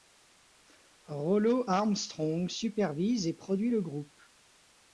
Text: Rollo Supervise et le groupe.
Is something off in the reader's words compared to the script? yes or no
yes